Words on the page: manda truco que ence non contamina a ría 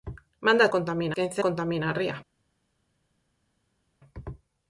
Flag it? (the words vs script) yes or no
yes